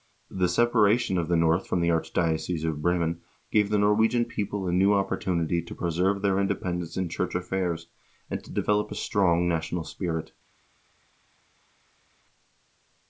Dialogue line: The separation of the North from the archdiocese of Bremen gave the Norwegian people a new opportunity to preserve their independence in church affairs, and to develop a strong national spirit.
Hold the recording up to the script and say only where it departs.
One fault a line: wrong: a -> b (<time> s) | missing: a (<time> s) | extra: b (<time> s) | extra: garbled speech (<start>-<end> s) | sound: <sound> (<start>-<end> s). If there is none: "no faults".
no faults